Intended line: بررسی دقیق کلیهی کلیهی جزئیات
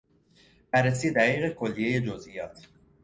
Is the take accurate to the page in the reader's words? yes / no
no